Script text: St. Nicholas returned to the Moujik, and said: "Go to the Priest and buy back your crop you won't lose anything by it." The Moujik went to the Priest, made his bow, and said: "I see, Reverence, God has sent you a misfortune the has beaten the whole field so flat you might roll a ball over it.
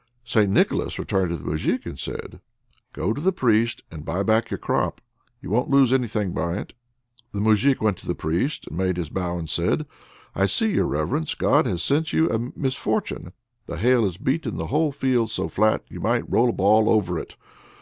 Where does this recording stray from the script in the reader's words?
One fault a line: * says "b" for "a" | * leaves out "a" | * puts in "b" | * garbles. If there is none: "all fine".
* puts in "your"
* puts in "hail"